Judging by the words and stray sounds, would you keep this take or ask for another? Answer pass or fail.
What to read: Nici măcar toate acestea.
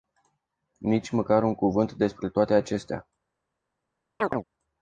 fail